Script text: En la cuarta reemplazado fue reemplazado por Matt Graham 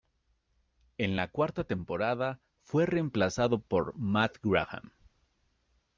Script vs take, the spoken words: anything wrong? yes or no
yes